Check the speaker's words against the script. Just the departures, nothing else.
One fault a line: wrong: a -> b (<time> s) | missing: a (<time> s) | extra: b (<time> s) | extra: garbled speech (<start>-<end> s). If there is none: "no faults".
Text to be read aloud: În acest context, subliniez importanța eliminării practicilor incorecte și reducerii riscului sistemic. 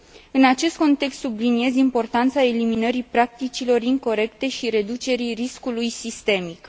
no faults